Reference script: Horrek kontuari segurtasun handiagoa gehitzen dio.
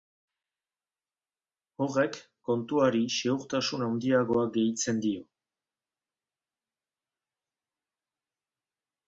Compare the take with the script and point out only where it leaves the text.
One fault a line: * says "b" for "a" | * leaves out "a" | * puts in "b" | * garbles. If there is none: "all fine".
all fine